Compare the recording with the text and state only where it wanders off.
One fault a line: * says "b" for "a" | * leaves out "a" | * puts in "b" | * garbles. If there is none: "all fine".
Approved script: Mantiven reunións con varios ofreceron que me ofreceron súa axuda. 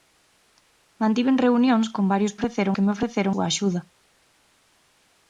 all fine